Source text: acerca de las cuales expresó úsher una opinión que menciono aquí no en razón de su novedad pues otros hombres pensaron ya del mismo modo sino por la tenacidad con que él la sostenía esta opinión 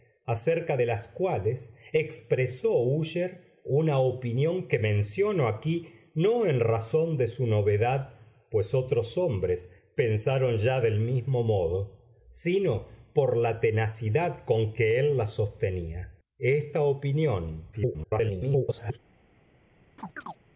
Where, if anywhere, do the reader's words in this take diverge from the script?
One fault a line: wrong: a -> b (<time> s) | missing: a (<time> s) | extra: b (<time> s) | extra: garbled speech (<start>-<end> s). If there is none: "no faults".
extra: garbled speech (17.7-19.0 s)